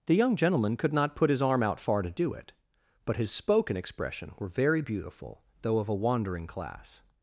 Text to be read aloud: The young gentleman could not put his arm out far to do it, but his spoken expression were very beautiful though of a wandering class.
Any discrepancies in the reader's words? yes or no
no